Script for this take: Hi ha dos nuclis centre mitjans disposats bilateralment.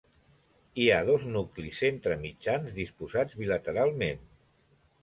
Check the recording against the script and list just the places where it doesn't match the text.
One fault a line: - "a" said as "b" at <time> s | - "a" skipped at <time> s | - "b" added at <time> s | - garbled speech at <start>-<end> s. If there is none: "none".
none